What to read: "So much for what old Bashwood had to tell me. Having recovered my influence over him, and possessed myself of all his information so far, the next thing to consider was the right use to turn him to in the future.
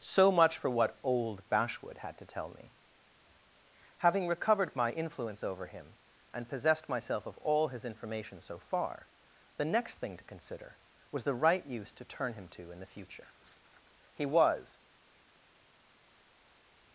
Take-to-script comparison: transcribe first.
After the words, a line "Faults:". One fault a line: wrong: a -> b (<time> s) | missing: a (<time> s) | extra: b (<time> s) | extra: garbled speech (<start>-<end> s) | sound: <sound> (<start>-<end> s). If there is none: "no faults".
"So much for what old Bashwood had to tell me. Having recovered my influence over him, and possessed myself of all his information so far, the next thing to consider was the right use to turn him to in the future. He was
Faults:
extra: He was (14.1 s)